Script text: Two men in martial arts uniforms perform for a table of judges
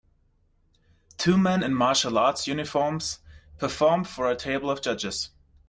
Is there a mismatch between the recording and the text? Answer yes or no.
no